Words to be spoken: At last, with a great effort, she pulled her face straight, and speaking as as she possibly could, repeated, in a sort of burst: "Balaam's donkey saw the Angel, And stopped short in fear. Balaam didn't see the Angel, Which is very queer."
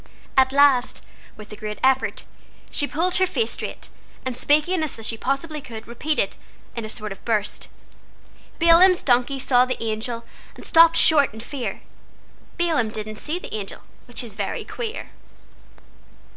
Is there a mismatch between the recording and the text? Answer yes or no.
no